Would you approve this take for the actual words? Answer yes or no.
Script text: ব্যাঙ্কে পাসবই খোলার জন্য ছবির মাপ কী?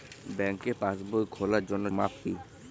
no